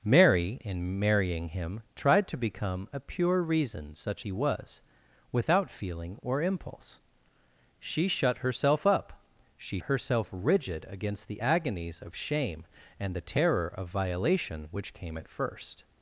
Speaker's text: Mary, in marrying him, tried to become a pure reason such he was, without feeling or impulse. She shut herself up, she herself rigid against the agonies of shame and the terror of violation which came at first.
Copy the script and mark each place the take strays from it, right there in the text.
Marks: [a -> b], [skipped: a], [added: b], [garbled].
Mary, in marrying him, tried to become a pure reason such he was, without feeling or impulse. She shut herself up, she herself rigid against the agonies of shame and the terror of violation which came at first.